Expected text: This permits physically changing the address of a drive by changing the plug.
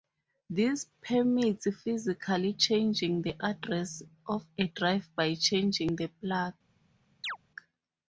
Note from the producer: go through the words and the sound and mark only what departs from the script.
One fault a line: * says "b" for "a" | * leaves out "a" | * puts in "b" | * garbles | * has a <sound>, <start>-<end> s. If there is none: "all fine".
* has a chirp, 7.2-7.4 s